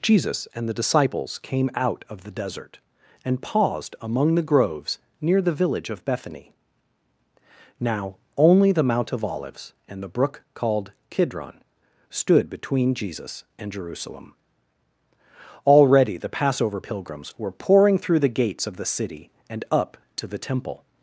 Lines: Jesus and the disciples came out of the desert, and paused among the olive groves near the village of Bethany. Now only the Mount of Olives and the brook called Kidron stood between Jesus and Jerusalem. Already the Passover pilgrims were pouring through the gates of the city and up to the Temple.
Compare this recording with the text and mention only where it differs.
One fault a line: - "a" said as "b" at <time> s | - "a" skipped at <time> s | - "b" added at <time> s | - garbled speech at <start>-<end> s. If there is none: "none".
- "olive" skipped at 4.4 s